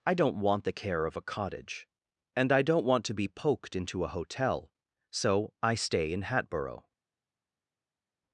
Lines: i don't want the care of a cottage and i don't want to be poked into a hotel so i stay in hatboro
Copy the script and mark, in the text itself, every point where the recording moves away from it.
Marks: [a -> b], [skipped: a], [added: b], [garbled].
i don't want the care of a cottage and i don't want to be poked into a hotel so i stay in hatboro